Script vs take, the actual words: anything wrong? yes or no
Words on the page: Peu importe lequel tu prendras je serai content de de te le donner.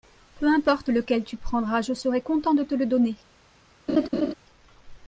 yes